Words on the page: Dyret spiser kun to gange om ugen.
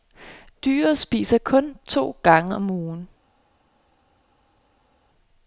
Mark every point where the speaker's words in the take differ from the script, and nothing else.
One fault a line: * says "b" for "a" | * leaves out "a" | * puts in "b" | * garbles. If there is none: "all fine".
all fine